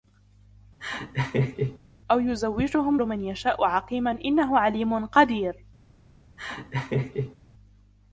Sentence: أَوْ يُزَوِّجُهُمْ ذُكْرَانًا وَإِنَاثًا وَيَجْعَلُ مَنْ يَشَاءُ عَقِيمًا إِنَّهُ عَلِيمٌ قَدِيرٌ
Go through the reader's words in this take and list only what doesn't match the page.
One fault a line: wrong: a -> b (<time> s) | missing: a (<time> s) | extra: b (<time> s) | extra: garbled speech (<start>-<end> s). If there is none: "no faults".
missing: ذُكْرَانًا وَإِنَاثًا وَيَجْعَلُ (3.0 s)